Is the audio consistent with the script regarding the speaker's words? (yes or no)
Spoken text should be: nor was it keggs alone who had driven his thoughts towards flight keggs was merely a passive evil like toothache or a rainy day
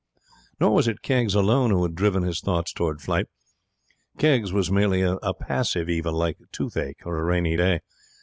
yes